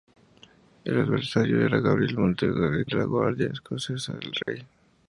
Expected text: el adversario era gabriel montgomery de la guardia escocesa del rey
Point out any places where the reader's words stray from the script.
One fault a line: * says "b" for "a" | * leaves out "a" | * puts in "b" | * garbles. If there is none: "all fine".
all fine